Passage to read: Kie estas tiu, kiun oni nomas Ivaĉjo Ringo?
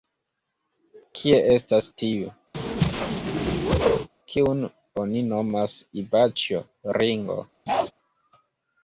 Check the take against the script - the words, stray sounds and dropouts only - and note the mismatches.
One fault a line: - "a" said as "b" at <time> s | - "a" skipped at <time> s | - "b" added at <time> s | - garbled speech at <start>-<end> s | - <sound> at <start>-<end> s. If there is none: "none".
- whoosh at 2.5-4.1 s
- bark at 7.7-7.9 s